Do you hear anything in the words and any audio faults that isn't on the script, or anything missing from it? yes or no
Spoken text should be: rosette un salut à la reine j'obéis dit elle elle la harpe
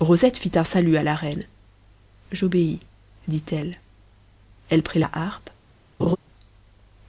yes